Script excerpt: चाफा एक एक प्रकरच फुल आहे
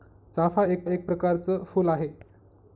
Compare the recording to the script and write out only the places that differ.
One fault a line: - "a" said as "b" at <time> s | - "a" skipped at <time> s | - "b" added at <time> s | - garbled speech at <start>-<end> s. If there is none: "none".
none